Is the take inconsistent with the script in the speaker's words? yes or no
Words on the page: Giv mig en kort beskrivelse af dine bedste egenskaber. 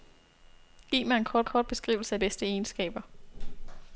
yes